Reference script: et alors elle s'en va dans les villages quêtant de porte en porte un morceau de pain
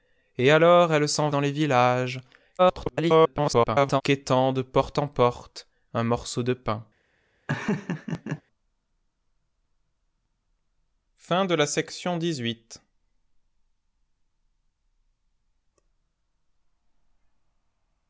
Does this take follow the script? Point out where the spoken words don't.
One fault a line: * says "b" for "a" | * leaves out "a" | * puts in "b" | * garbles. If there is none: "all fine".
* leaves out "va"
* garbles